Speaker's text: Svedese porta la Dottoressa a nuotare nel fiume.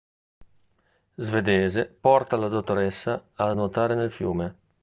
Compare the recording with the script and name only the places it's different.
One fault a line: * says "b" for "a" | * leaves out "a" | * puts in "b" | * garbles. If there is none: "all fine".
all fine